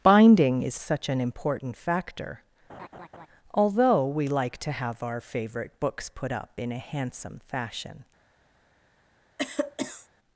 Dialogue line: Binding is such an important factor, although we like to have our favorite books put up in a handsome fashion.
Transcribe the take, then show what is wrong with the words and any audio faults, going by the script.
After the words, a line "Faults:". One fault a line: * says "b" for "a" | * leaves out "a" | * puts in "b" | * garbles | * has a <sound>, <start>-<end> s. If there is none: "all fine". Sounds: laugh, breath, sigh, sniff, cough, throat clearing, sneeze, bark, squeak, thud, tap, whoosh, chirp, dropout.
Binding is such an important factor, although we like to have our favorite books put up in a handsome fashion.
Faults:
* has a laugh, 2.7-3.3 s
* has a cough, 9.4-10.1 s